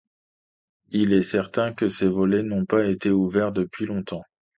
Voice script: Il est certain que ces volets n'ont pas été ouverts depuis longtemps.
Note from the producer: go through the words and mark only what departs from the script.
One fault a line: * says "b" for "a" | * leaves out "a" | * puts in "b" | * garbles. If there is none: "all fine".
all fine